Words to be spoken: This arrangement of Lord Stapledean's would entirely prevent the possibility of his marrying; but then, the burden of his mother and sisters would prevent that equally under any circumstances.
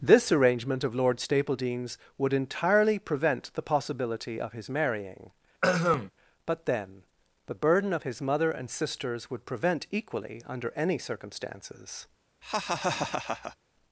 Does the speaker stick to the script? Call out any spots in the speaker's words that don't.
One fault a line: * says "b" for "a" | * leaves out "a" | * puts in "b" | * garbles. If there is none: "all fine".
* leaves out "that"